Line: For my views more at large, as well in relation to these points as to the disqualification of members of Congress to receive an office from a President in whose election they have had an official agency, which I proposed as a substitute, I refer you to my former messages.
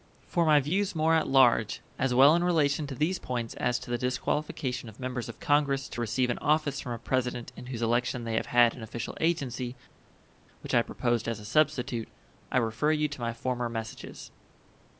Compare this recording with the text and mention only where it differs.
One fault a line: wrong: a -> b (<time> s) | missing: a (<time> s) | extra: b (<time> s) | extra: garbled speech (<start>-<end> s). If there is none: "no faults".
no faults